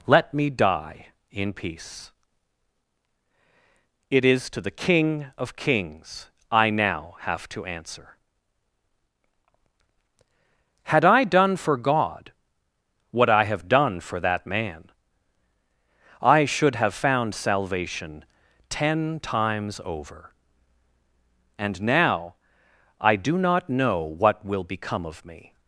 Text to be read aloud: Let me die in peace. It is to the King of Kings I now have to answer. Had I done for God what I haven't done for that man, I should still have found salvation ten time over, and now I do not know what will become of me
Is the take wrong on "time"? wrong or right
wrong